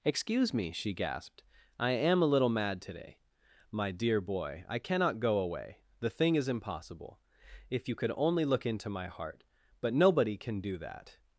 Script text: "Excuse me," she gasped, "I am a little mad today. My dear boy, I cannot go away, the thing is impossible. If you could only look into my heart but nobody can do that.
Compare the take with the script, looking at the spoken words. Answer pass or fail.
pass